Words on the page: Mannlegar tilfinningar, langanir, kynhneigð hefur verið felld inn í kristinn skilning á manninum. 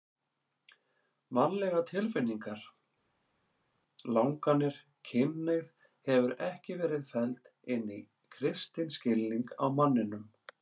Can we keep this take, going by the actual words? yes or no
no